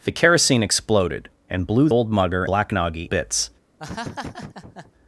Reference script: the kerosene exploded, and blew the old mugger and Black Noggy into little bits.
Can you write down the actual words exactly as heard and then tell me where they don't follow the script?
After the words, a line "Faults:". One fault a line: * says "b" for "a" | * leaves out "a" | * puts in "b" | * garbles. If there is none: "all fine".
the kerosene exploded, and blew old mugger Black Noggy bits.
Faults:
* leaves out "the"
* leaves out "and"
* leaves out "into little"